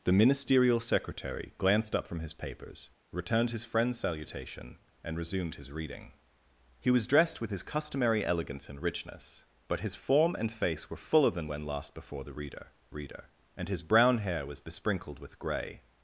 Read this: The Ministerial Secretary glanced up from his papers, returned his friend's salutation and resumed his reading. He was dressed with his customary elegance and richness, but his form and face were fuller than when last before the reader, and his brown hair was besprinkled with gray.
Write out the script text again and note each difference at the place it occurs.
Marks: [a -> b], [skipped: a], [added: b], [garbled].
The Ministerial Secretary glanced up from his papers, returned his friend's salutation and resumed his reading. He was dressed with his customary elegance and richness, but his form and face were fuller than when last before the reader, [added: reader] and his brown hair was besprinkled with gray.